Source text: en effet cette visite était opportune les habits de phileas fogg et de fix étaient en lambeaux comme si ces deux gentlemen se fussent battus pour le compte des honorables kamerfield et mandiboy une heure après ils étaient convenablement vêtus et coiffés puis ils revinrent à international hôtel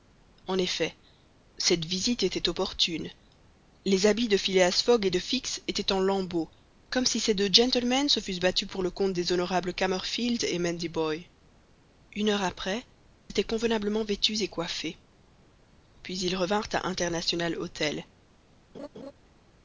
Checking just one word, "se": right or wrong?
right